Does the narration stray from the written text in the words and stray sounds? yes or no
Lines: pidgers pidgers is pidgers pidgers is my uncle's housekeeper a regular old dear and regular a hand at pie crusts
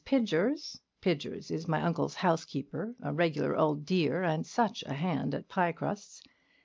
yes